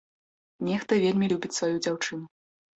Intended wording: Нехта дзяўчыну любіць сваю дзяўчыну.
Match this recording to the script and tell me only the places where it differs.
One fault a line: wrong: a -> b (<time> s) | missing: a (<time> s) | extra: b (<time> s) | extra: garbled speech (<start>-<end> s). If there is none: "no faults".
wrong: дзяўчыну -> вельмі (1.1 s)